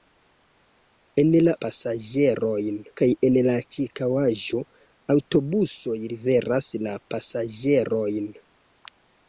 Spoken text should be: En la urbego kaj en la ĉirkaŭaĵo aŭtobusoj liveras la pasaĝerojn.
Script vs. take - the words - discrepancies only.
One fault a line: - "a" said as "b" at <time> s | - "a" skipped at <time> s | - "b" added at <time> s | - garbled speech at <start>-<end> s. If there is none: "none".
- "urbego" said as "pasaĝerojn" at 1.7 s